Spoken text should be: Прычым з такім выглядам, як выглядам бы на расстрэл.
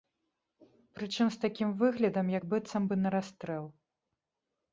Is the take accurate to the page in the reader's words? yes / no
no